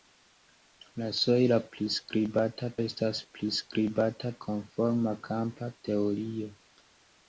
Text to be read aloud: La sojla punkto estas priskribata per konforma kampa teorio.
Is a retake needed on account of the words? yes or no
yes